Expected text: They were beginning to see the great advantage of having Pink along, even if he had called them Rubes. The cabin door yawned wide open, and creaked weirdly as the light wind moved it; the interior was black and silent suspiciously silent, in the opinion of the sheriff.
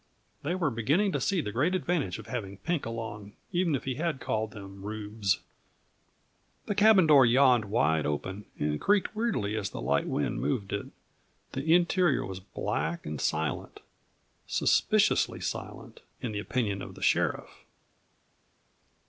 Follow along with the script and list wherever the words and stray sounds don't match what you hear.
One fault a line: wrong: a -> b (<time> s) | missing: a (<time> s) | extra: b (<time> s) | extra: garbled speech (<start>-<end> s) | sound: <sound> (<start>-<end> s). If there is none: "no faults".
no faults